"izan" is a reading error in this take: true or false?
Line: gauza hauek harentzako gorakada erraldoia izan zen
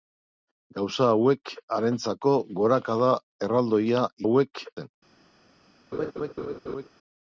true